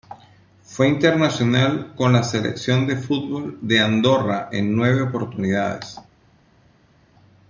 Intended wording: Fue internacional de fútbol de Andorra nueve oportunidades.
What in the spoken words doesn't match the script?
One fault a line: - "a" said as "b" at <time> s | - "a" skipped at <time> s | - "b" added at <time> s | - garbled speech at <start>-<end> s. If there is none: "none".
- "con la Selección" added at 1.9 s
- "en" added at 4.5 s